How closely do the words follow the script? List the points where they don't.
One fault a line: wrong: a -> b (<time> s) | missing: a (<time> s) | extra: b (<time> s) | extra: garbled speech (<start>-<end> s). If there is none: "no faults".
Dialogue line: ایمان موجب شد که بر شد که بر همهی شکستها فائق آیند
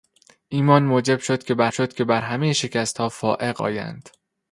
no faults